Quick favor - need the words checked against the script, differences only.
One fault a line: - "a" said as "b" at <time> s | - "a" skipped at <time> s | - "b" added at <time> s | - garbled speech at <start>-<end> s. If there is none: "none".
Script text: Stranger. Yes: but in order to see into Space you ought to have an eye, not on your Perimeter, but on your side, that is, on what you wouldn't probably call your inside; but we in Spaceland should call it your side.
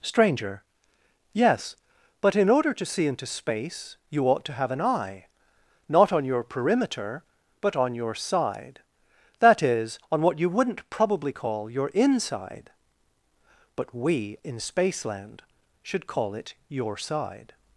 none